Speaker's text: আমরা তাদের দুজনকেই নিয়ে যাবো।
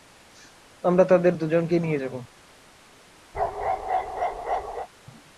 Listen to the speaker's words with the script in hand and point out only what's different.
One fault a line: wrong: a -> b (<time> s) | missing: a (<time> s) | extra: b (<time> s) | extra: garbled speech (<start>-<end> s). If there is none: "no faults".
no faults